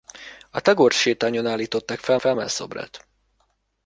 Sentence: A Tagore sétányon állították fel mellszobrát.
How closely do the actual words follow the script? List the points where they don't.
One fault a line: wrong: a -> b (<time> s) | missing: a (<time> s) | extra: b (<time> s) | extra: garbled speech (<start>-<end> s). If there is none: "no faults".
extra: fel (2.2 s)